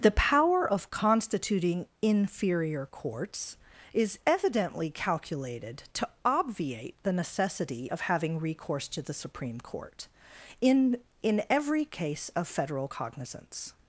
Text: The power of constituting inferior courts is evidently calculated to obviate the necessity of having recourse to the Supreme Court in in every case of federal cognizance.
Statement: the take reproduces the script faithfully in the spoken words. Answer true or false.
true